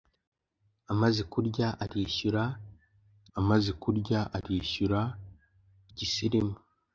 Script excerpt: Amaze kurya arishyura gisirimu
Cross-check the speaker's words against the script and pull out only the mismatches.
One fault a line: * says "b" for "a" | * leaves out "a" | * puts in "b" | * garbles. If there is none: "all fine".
* puts in "amaze kurya arishyura"